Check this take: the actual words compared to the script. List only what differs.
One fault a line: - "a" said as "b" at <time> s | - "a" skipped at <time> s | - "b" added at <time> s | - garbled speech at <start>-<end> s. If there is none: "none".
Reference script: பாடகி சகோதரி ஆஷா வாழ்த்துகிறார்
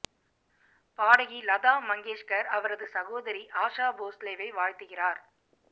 - "லதா மங்கேஷ்கர் அவரது" added at 1.4 s
- "போஸ்லேவை" added at 4.0 s